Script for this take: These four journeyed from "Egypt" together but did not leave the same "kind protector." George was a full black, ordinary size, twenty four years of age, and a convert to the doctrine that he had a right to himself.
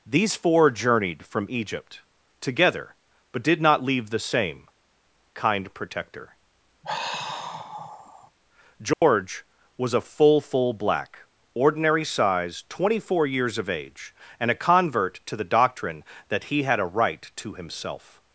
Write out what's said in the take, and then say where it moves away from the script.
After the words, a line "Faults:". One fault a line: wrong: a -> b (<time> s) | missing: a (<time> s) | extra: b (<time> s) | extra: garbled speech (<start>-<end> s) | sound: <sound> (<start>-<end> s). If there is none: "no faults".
These four journeyed from "Egypt" together but did not leave the same "kind protector." George was a full full black, ordinary size, twenty four years of age, and a convert to the doctrine that he had a right to himself.
Faults:
sound: sigh (6.8-8.3 s)
sound: dropout (8.9-9.0 s)
extra: full (10.4 s)